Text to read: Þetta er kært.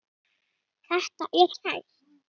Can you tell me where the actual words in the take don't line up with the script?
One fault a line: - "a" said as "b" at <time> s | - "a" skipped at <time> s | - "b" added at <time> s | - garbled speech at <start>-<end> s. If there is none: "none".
none